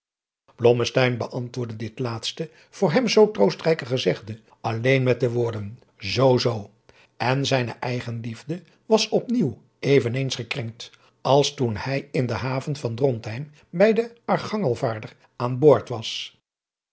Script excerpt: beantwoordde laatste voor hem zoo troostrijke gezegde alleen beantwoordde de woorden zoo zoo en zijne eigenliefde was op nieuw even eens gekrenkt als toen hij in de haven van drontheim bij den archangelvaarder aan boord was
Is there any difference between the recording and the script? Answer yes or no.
yes